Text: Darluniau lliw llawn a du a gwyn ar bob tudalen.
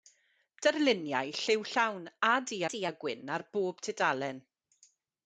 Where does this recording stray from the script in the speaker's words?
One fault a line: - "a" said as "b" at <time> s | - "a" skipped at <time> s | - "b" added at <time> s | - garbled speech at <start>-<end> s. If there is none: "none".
- "du" added at 2.7 s